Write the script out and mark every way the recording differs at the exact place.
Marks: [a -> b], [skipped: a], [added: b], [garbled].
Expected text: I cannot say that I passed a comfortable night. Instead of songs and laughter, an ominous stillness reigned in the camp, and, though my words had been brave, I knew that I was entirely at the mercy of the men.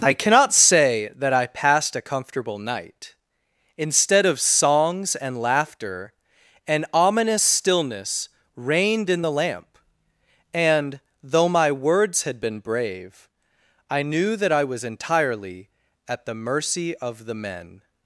I cannot say that I passed a comfortable night. Instead of songs and laughter, an ominous stillness reigned in the [camp, -> lamp] and, though my words had been brave, I knew that I was entirely at the mercy of the men.